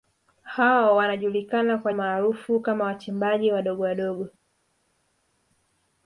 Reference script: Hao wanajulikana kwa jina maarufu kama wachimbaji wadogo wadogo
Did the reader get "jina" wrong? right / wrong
wrong